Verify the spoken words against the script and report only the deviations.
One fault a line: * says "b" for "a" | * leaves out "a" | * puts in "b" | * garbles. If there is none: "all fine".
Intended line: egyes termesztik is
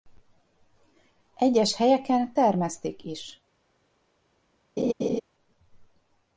* puts in "helyeken"